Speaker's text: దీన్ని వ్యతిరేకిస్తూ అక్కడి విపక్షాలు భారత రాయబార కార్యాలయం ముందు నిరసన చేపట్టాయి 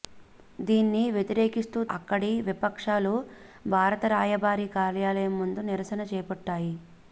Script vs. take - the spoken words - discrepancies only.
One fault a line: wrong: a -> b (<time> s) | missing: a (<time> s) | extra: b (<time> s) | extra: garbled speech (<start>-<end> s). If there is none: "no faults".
no faults